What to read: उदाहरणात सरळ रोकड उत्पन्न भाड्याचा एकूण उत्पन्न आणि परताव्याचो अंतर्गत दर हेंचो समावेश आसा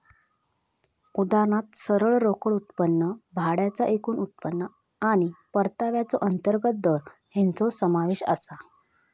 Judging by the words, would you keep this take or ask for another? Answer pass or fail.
pass